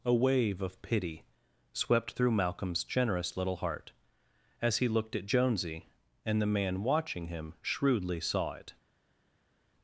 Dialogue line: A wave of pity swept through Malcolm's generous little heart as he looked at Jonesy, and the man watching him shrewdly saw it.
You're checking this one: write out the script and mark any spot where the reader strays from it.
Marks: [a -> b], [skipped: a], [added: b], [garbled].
A wave of pity swept through Malcolm's generous little heart as he looked at Jonesy, and the man watching him shrewdly saw it.